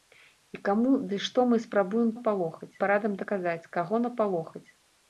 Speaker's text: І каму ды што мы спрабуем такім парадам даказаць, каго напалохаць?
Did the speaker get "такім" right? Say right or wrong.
wrong